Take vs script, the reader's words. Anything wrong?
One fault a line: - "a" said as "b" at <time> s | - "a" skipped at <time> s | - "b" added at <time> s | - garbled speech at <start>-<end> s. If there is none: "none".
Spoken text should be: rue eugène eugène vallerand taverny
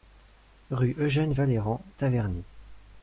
- "eugène" skipped at 1.3 s